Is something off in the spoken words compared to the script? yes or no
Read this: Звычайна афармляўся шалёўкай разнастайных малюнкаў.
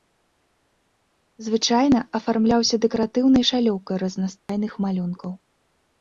yes